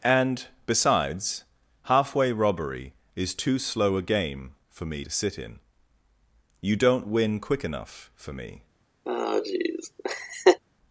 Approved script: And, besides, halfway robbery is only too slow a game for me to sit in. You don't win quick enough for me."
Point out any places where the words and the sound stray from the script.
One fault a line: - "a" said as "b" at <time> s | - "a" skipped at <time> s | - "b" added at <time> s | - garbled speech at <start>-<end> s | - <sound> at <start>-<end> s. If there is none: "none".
- "only" skipped at 3.4 s
- laugh at 9.1-10.6 s